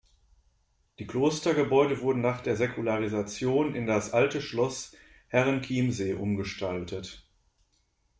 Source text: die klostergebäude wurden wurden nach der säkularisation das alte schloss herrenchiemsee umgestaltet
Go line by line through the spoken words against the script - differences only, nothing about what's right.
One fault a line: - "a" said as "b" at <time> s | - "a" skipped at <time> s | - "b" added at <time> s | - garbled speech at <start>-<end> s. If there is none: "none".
- "wurden" skipped at 2.2 s
- "in" added at 3.8 s